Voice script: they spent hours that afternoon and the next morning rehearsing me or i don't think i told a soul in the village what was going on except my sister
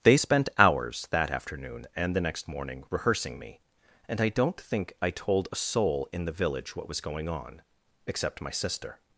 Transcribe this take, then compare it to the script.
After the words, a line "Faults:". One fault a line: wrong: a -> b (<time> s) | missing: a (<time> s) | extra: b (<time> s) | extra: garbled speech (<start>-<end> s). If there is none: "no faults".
they spent hours that afternoon and the next morning rehearsing me and i don't think i told a soul in the village what was going on except my sister
Faults:
wrong: or -> and (4.1 s)